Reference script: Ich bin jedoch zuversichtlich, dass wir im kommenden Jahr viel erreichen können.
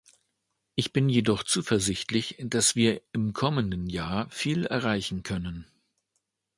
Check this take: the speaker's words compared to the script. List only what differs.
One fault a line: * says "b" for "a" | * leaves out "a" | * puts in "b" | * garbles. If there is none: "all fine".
all fine